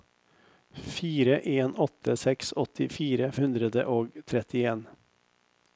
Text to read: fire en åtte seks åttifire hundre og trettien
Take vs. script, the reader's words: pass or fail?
pass